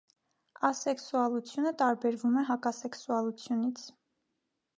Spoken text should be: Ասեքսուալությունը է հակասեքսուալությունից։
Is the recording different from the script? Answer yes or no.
yes